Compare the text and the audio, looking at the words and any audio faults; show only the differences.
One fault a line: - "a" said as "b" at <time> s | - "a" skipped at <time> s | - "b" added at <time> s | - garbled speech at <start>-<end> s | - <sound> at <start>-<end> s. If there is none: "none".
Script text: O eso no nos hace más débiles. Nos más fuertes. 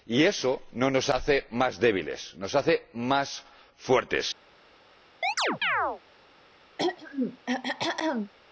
- "O" said as "Y" at 0.1 s
- "hace" added at 2.5 s
- chirp at 5.2-6.0 s
- throat clearing at 6.8-8.3 s